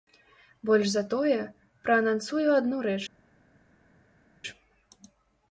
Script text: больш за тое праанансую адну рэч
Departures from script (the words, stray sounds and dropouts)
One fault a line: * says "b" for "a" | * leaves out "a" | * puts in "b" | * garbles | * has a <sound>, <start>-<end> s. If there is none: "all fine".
all fine